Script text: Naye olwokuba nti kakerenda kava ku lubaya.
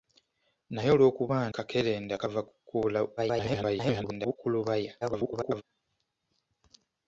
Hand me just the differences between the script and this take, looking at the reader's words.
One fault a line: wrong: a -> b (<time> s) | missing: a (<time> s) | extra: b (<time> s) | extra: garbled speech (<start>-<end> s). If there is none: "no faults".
missing: nti (1.4 s)
extra: garbled speech (3.2-4.4 s)
extra: garbled speech (5.0-5.6 s)